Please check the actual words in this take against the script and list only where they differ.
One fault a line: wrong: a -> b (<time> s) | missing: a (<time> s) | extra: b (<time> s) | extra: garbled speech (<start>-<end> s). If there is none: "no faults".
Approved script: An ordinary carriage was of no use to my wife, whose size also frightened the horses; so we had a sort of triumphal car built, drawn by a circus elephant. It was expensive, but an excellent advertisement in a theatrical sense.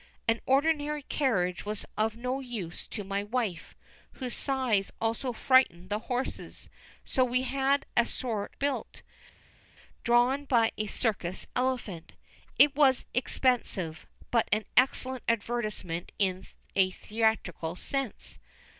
missing: of triumphal car (8.5 s)